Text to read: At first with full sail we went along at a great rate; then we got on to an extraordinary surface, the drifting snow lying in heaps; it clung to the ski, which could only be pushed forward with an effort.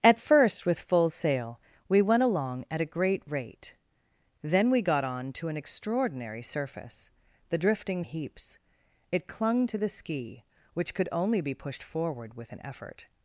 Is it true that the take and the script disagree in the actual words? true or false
true